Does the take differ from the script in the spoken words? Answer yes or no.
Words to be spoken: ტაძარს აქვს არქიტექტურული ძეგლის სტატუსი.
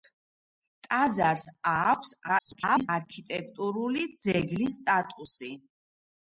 yes